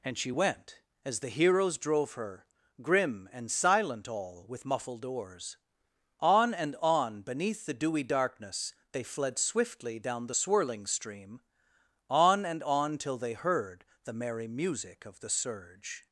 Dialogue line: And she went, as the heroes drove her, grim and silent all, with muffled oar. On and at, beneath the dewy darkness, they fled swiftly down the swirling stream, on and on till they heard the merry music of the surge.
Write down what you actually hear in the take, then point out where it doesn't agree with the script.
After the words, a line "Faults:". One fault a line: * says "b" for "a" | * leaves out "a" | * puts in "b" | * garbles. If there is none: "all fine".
And she went, as the heroes drove her, grim and silent all, with muffled oars. On and on, beneath the dewy darkness, they fled swiftly down the swirling stream, on and on till they heard the merry music of the surge.
Faults:
* says "oars" for "oar"
* says "on" for "at"